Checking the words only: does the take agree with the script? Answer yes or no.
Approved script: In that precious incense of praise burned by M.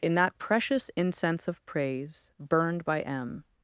yes